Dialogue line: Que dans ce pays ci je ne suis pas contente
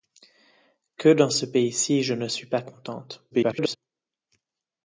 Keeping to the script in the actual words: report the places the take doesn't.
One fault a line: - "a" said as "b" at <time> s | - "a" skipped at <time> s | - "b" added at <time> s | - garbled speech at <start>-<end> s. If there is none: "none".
- garbled speech at 3.3-3.8 s